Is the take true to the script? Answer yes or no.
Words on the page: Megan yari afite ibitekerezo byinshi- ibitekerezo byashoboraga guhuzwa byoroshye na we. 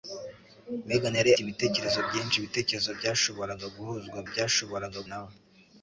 no